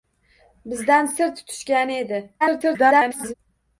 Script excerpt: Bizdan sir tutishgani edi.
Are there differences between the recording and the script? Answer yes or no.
yes